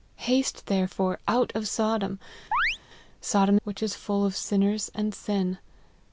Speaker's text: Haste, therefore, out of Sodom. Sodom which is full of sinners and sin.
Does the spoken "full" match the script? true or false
true